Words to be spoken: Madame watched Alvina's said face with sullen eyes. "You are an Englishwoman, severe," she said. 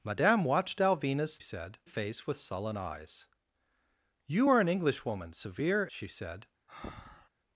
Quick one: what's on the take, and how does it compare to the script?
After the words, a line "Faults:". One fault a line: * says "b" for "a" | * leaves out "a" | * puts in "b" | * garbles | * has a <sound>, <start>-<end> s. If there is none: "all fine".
Madame watched Alvina's said face with sullen eyes. "You are an Englishwoman, severe," she said.
Faults:
* has a breath, 6.7-7.3 s